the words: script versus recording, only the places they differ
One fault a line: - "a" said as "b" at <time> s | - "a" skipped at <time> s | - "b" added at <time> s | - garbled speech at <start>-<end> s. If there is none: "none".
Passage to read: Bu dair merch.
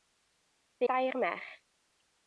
none